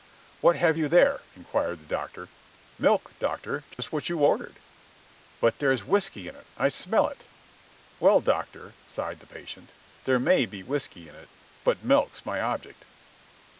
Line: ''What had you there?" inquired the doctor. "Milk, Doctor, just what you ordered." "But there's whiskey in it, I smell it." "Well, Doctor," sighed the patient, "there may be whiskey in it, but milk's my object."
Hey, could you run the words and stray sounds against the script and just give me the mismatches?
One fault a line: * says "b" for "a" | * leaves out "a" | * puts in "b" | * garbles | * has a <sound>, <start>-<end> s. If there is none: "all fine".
* says "have" for "had"
* has a dropout, 3.7-3.8 s